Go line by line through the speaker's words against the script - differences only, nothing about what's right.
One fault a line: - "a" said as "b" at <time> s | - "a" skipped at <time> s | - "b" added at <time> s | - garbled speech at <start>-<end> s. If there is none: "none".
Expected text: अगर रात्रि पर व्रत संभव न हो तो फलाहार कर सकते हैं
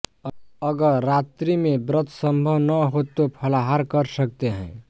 - "पर" said as "में" at 1.6 s